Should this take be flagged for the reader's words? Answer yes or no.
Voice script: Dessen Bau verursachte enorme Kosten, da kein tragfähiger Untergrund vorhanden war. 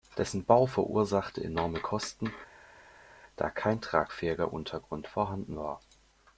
no